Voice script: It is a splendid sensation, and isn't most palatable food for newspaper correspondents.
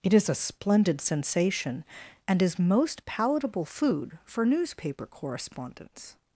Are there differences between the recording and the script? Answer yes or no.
yes